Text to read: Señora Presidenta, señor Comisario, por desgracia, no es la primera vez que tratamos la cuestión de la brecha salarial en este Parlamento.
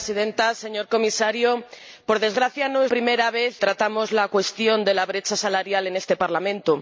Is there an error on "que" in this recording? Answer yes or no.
yes